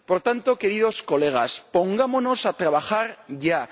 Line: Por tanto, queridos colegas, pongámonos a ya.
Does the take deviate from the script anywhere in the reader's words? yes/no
yes